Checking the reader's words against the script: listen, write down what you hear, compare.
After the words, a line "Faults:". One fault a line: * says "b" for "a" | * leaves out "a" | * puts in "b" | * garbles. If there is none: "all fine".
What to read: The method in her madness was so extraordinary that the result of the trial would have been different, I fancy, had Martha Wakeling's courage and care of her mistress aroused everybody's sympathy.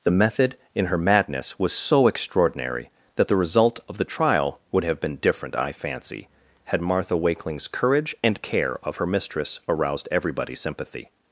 The method in her madness was so extraordinary that the result of the trial would have been different, I fancy, had Martha Wakeling's courage and care of her mistress aroused everybody's sympathy.
Faults:
all fine